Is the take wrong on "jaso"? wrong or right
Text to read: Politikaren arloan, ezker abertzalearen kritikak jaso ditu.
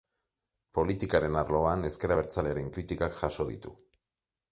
right